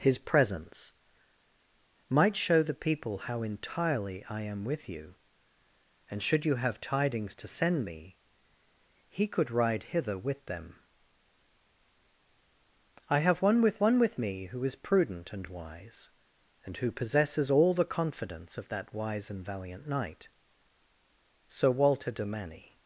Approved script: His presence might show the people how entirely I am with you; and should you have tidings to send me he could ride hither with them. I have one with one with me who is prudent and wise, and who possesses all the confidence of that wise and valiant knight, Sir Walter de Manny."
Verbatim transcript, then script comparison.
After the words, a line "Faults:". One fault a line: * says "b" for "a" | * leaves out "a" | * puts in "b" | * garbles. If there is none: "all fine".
His presence might show the people how entirely I am with you; and should you have tidings to send me he could ride hither with them. I have one with one with me who is prudent and wise, and who possesses all the confidence of that wise and valiant knight, Sir Walter de Manny."
Faults:
all fine